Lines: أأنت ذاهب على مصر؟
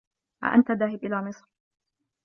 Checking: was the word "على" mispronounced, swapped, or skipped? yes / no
yes